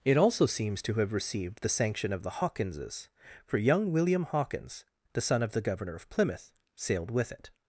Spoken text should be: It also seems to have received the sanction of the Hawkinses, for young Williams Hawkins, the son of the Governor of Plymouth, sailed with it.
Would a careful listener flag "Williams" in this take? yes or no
yes